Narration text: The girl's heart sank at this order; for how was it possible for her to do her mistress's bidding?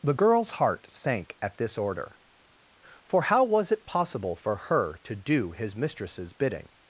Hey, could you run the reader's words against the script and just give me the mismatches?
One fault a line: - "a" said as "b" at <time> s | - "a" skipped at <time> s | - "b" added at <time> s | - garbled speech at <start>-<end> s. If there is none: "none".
- "her" said as "his" at 5.5 s